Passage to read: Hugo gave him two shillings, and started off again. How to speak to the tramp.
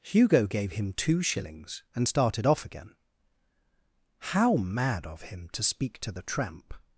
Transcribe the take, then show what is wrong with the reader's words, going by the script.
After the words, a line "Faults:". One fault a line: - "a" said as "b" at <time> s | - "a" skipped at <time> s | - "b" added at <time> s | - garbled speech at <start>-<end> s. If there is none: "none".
Hugo gave him two shillings, and started off again. How mad of him to speak to the tramp.
Faults:
- "mad of him" added at 4.5 s